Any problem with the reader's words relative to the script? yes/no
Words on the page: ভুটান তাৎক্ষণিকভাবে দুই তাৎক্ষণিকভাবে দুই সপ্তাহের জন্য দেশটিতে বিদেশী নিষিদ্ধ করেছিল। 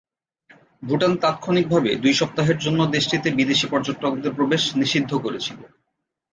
yes